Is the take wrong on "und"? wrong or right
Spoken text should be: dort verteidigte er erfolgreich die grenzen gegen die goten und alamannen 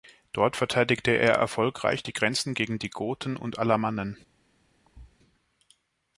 right